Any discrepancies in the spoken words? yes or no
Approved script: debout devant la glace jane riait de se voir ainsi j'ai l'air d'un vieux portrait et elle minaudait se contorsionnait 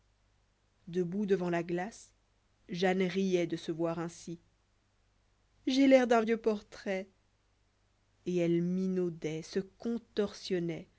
no